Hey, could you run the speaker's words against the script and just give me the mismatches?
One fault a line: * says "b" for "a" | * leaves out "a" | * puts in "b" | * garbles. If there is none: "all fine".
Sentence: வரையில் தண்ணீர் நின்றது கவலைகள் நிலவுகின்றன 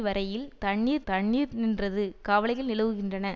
* puts in "தண்ணீர்"